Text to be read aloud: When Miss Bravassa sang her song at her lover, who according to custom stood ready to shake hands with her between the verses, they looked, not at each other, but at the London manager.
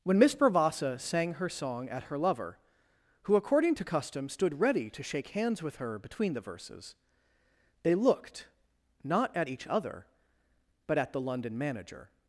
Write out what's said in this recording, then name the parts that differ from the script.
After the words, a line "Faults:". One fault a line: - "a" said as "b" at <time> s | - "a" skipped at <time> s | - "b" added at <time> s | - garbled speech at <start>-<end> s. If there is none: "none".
When Miss Bravassa sang her song at her lover, who according to custom stood ready to shake hands with her between the verses, they looked, not at each other, but at the London manager.
Faults:
none